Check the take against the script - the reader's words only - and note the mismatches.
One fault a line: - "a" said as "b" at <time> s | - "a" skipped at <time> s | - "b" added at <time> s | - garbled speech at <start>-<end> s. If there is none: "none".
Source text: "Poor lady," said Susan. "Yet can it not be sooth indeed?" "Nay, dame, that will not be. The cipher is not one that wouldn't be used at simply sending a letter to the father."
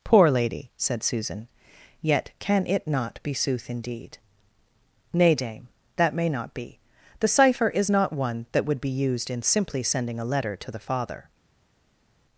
- "will" said as "may" at 6.1 s
- "wouldn't" said as "would" at 8.7 s
- "at" said as "in" at 9.3 s